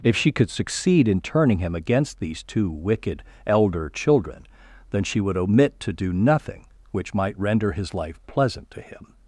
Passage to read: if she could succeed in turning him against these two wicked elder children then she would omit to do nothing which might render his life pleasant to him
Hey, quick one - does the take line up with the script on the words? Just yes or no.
yes